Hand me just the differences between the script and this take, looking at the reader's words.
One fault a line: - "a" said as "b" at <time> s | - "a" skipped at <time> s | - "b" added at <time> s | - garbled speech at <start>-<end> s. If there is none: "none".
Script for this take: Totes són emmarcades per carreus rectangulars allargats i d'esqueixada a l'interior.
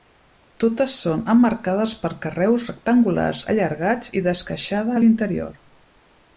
none